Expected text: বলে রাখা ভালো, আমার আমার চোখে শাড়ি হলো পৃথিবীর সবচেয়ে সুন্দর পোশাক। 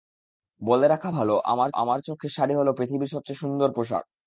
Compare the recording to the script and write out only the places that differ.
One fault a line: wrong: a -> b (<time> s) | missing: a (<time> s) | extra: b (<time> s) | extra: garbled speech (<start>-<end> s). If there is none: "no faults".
no faults